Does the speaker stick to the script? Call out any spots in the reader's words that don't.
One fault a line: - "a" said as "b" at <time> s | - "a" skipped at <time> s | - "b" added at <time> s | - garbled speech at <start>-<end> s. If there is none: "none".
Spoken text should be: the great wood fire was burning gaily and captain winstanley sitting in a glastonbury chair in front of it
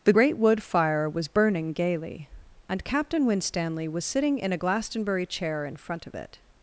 - "was" added at 3.9 s